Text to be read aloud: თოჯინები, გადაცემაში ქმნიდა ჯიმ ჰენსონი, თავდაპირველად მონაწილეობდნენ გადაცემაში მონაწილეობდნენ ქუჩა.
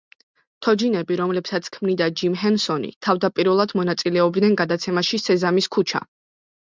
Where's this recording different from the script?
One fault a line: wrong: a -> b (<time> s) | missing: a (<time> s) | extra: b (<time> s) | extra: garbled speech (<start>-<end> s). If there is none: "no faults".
wrong: გადაცემაში -> რომლებსაც (1.2 s)
wrong: მონაწილეობდნენ -> სეზამის (5.2 s)